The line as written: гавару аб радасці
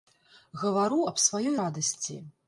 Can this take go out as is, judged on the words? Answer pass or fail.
fail